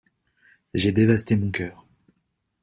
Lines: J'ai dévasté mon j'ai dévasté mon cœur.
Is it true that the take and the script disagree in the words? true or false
true